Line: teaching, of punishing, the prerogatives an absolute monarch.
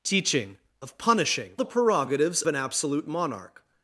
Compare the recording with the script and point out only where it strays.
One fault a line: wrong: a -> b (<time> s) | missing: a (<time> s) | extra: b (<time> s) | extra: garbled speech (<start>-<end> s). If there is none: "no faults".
no faults